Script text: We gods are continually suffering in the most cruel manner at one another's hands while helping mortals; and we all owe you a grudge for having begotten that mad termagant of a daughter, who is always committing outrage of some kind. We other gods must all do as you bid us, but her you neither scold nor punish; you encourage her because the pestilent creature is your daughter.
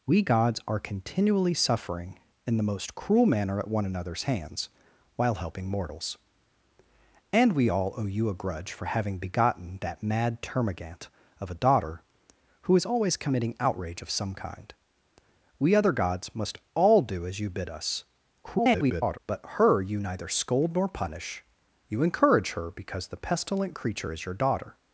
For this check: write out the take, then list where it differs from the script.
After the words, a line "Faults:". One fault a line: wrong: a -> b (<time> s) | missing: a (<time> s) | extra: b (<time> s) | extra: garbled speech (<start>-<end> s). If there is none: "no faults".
We gods are continually suffering in the most cruel manner at one another's hands while helping mortals; and we all owe you a grudge for having begotten that mad termagant of a daughter, who is always committing outrage of some kind. We other gods must all do as you bid us, [garbled] but her you neither scold nor punish; you encourage her because the pestilent creature is your daughter.
Faults:
extra: garbled speech (18.4-19.2 s)